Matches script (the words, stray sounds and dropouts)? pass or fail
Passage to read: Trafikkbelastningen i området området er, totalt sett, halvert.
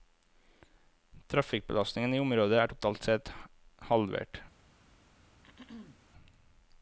fail